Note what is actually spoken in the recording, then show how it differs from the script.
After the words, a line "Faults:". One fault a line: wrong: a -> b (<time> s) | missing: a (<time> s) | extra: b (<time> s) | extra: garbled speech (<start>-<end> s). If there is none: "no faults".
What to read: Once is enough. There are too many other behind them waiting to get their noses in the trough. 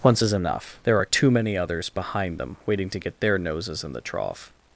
Once is enough. There are too many others behind them waiting to get their noses in the trough.
Faults:
wrong: other -> others (1.6 s)